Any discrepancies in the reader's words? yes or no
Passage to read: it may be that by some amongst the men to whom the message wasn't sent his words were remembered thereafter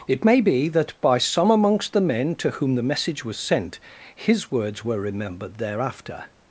yes